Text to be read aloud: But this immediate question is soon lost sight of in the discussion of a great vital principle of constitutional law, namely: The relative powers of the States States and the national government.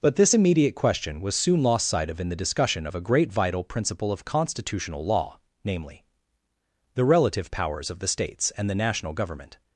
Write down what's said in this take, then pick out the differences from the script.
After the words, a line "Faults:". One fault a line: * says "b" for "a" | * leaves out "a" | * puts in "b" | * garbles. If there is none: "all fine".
But this immediate question was soon lost sight of in the discussion of a great vital principle of constitutional law, namely: The relative powers of the States and the national government.
Faults:
* says "was" for "is"
* leaves out "States"